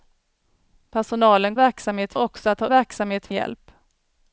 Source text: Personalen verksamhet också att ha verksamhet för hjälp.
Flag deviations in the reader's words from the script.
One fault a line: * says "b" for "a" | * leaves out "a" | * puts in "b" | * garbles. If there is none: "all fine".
all fine